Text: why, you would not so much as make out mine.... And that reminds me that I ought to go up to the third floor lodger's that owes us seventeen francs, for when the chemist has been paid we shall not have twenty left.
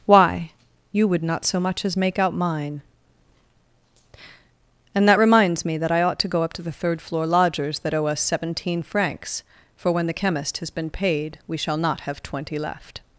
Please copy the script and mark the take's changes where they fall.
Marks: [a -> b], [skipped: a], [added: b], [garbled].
why, you would not so much as make out mine.... And that reminds me that I ought to go up to the third floor lodger's that [owes -> owe] us seventeen francs, for when the chemist has been paid we shall not have twenty left.